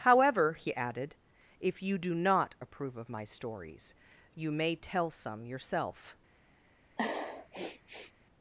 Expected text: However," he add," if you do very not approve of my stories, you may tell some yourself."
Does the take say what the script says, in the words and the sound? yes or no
no